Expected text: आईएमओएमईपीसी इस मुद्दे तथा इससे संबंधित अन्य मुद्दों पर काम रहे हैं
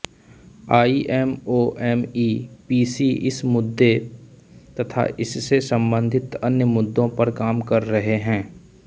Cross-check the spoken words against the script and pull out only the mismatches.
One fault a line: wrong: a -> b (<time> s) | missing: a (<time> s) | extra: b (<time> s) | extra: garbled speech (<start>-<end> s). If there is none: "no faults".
extra: कर (7.7 s)